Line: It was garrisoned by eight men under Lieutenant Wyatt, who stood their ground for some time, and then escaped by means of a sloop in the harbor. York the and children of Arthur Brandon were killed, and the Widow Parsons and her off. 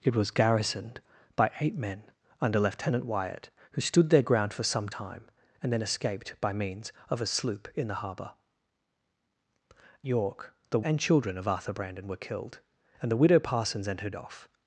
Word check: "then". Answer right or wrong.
right